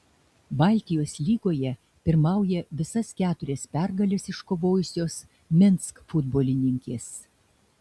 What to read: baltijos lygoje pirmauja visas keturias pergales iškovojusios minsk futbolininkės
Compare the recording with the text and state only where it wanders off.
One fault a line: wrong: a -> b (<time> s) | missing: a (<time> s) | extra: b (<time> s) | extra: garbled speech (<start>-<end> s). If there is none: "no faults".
no faults